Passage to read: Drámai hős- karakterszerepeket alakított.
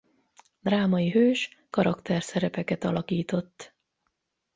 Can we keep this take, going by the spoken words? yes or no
yes